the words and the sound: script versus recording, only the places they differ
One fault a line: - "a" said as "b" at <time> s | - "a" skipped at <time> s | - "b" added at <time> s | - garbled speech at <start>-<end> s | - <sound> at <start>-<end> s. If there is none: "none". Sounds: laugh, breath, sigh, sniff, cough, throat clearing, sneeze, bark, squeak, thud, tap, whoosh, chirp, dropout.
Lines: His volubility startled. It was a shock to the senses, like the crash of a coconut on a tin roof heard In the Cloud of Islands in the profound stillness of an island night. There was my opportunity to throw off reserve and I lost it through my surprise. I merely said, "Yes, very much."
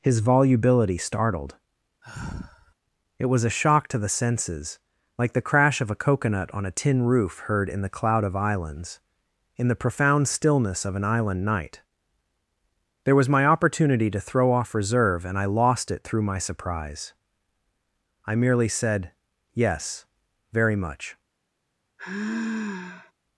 - sigh at 2.0-2.7 s
- sigh at 22.0-23.1 s